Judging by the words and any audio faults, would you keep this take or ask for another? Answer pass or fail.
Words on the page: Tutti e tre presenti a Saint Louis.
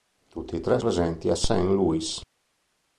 pass